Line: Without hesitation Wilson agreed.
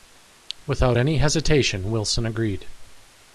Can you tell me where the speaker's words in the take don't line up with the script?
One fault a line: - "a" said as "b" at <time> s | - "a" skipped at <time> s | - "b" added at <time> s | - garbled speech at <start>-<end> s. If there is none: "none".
- "any" added at 0.9 s